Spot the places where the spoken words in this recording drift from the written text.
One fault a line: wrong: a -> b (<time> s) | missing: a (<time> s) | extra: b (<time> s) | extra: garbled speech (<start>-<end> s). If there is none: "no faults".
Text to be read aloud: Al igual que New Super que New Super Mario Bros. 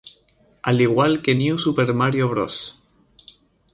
missing: que New Super (1.9 s)